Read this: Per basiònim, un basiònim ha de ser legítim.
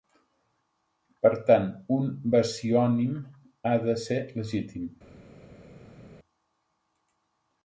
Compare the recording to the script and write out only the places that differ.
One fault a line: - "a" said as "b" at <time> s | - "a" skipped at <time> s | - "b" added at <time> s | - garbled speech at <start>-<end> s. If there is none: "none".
- "basiònim" said as "tant" at 1.5 s